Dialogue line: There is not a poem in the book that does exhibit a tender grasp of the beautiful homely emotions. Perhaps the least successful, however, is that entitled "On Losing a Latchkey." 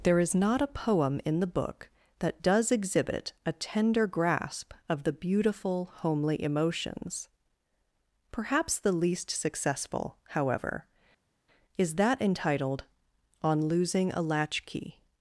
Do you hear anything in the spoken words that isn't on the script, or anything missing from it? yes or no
no